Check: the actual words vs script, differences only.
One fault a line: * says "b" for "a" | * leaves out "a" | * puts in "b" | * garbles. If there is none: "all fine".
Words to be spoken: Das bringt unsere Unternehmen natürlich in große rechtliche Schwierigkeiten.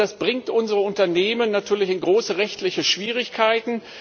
all fine